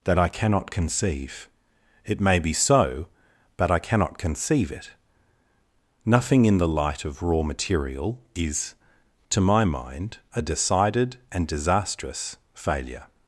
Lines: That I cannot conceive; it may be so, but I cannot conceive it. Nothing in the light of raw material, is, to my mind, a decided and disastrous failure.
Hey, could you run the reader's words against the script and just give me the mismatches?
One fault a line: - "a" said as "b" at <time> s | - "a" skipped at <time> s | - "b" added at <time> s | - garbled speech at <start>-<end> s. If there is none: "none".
none